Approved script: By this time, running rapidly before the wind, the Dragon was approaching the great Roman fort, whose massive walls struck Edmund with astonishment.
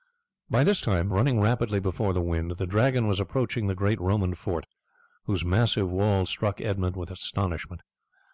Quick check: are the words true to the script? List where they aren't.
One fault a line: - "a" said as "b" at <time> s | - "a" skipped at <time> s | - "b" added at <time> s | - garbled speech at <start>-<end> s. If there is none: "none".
none